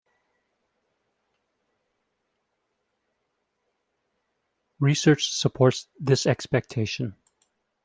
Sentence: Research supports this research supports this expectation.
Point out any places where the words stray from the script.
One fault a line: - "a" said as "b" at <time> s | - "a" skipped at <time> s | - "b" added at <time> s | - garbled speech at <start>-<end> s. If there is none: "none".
- "research supports this" skipped at 6.2 s